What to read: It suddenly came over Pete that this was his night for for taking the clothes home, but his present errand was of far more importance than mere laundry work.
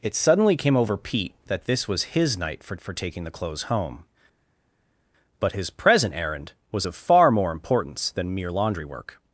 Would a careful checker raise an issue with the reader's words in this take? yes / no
no